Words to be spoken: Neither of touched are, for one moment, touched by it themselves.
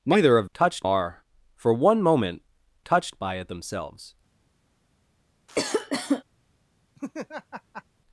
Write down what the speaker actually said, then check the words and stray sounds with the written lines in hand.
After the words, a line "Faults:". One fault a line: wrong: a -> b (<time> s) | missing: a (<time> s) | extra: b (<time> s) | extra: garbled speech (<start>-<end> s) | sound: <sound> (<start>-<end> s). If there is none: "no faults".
Neither of touched are, for one moment, touched by it themselves.
Faults:
sound: cough (5.5-6.2 s)
sound: laugh (7.0-7.8 s)